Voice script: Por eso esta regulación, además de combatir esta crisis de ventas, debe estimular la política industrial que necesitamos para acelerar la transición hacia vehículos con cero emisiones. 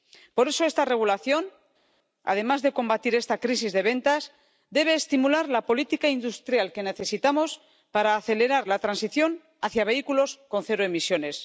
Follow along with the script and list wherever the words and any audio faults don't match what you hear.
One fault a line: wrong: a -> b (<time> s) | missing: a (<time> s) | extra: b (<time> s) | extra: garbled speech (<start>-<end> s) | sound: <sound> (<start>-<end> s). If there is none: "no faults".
no faults